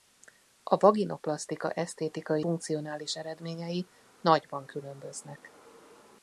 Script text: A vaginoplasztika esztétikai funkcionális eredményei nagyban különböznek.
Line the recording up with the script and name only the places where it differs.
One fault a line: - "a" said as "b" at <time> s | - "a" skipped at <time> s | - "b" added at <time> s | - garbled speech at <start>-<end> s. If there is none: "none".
none